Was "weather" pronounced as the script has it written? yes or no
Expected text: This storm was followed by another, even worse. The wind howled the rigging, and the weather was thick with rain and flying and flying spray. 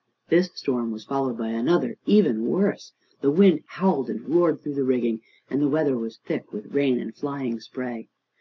yes